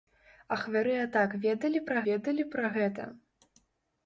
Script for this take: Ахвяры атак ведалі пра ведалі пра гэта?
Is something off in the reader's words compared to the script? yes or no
no